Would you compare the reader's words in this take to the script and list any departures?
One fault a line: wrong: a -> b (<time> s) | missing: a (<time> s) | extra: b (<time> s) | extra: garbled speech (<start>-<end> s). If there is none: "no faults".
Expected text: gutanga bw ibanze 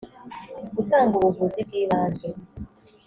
extra: ubuvuzi (1.1 s)